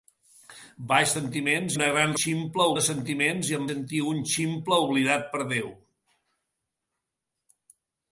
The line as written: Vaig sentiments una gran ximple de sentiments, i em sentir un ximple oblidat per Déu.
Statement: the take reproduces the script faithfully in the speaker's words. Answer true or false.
true